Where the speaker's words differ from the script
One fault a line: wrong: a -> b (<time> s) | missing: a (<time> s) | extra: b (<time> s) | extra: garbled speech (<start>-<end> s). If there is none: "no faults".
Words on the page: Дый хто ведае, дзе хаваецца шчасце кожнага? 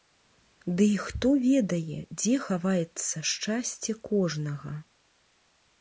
no faults